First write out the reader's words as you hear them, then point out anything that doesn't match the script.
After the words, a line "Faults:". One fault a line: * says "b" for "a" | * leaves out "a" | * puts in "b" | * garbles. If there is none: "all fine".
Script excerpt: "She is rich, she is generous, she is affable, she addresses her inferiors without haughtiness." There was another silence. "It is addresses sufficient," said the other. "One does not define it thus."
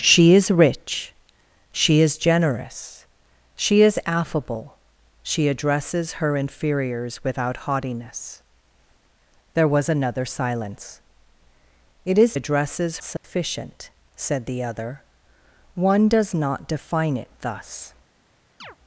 "She is rich, she is generous, she is affable, she addresses her inferiors without haughtiness." There was another silence. "It is addresses sufficient," said the other. "One does not define it thus."
Faults:
all fine